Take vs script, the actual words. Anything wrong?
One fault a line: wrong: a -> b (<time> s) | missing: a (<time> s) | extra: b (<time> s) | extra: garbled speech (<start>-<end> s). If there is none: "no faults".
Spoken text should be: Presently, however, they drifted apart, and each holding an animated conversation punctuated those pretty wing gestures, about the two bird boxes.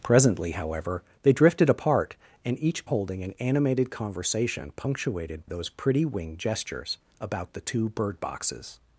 no faults